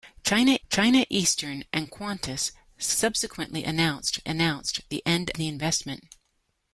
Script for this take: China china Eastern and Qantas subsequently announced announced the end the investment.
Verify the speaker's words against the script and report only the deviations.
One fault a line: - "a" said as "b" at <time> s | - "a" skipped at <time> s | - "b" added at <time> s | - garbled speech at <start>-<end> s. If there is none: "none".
none